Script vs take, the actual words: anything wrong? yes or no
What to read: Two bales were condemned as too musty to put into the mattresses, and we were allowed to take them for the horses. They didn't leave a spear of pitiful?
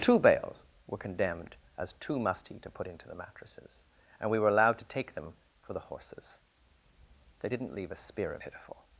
no